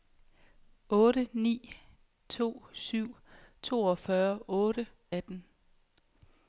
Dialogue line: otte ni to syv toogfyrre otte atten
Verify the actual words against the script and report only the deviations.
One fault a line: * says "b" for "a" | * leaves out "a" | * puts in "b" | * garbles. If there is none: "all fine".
all fine